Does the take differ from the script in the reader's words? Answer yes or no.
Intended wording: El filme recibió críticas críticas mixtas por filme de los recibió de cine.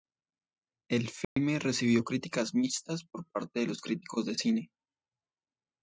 yes